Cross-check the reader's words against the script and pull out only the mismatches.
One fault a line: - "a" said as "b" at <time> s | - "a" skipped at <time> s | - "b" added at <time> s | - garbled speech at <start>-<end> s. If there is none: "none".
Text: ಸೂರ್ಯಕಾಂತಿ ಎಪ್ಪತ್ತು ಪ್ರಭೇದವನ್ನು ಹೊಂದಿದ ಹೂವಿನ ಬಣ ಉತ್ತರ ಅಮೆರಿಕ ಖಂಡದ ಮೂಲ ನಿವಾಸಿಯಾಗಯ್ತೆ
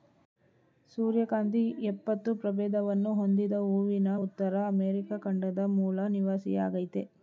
- "ಬಣ" skipped at 4.2 s